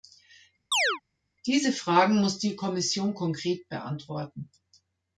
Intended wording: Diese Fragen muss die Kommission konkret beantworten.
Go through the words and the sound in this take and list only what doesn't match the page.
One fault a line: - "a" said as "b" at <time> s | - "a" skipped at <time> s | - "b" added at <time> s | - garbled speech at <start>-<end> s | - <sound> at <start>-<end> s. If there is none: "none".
- chirp at 0.7-1.0 s